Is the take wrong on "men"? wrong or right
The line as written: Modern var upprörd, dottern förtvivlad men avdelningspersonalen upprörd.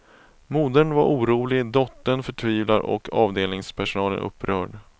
wrong